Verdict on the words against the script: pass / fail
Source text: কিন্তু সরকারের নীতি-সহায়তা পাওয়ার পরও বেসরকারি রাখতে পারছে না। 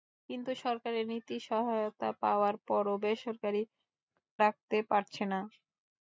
pass